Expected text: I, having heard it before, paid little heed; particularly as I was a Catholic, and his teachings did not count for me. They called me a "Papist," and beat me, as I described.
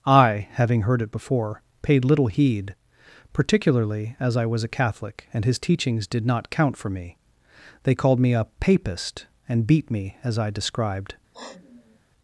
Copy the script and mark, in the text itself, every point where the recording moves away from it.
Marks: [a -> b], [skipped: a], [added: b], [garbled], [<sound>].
I, having heard it before, paid little heed; particularly as I was a Catholic, and his teachings did not count for me. They called me a "Papist," and beat me, as I described. [sniff]